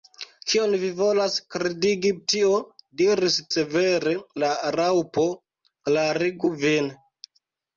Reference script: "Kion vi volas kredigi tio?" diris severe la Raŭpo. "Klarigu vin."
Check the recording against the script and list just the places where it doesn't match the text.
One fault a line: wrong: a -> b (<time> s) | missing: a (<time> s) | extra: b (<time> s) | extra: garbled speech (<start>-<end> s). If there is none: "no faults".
no faults